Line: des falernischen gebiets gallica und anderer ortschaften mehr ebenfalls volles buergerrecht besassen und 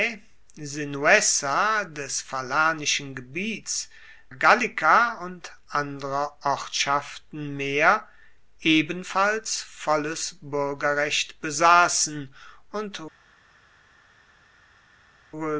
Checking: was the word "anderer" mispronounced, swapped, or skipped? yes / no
no